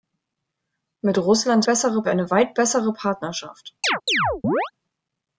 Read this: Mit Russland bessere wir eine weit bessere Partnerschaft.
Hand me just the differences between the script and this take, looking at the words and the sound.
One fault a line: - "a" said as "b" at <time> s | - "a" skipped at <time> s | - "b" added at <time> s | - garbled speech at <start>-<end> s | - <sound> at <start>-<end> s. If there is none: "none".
- chirp at 3.8-4.7 s